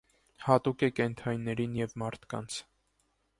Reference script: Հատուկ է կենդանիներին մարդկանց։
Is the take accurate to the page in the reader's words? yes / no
no